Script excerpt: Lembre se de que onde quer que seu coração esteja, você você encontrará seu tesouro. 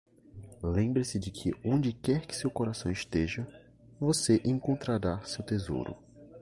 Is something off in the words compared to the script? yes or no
yes